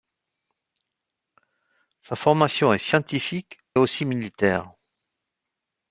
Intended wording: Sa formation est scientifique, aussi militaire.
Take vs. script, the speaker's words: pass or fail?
pass